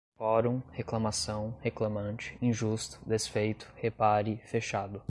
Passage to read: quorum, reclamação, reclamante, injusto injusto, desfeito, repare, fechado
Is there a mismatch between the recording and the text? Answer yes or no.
yes